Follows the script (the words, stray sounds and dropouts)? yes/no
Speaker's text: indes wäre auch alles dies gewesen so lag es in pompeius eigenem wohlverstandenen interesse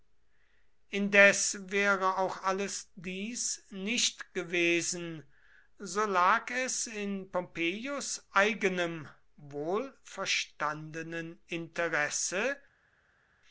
no